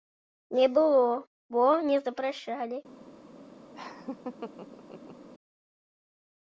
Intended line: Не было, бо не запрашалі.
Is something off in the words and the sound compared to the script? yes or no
yes